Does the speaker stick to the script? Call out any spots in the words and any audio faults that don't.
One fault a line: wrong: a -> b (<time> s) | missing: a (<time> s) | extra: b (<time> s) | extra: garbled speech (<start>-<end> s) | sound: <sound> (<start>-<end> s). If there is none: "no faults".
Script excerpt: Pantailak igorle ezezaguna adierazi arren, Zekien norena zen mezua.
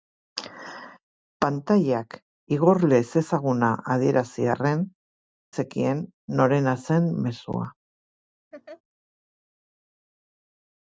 sound: laugh (8.5-8.8 s)